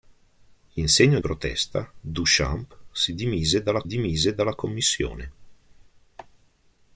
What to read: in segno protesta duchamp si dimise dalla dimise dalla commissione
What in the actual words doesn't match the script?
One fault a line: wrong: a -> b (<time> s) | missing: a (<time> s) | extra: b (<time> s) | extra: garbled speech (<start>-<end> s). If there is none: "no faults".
no faults